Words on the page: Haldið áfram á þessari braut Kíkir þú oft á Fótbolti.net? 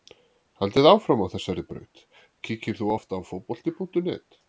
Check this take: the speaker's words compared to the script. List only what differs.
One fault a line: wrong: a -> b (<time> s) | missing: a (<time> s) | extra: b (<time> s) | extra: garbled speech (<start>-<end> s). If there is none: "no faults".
no faults